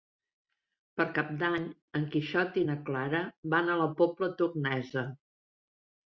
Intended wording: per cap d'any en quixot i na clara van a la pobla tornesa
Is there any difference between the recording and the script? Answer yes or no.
no